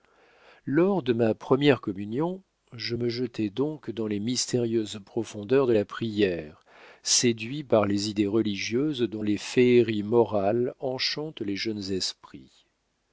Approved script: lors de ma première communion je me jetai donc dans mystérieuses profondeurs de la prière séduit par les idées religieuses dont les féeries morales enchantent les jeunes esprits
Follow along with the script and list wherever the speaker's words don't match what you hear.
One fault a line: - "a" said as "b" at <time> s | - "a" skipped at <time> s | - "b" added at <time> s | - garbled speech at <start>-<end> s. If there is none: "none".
- "les" added at 4.1 s